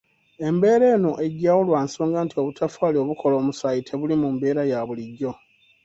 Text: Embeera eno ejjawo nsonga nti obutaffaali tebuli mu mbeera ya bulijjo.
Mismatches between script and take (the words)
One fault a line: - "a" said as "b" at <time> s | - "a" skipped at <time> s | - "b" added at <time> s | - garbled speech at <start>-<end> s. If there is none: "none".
- "lwa" added at 1.7 s
- "obukola omusaayi" added at 3.0 s